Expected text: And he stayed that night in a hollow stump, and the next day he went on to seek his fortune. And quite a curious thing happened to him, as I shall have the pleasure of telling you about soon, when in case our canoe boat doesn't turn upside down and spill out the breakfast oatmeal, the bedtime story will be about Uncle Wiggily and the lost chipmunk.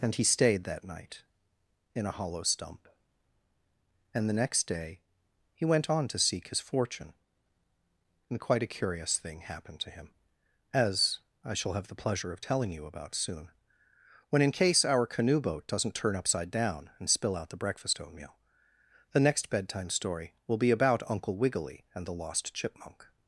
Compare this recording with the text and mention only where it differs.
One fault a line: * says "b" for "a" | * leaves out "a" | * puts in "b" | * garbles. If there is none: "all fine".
* puts in "next"